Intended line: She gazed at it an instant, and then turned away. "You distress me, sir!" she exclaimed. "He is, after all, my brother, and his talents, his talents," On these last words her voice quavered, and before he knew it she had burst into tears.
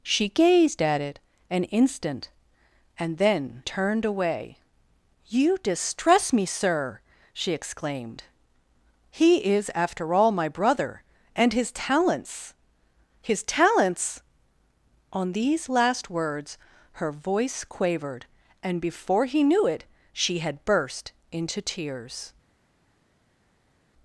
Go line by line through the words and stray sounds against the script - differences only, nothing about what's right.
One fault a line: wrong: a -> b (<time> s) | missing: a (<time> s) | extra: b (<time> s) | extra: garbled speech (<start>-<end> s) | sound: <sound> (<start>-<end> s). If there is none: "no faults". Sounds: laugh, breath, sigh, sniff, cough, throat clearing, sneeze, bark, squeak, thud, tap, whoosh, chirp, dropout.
no faults